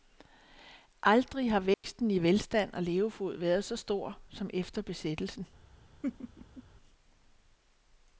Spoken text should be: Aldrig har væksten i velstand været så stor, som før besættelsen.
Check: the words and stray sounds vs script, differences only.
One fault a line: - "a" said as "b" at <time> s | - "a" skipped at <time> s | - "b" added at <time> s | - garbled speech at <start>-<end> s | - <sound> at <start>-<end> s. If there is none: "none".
- dropout at 1.7-1.8 s
- "og levefod" added at 2.7 s
- "før" said as "efter" at 4.5 s
- laugh at 6.0-6.6 s